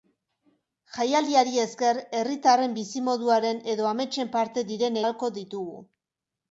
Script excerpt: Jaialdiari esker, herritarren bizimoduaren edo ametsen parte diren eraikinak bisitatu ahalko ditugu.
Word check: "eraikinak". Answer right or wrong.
wrong